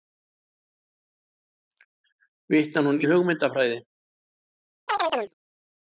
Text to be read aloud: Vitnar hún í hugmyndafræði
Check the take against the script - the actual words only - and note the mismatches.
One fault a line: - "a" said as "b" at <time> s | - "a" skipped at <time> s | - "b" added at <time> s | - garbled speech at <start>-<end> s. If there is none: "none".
none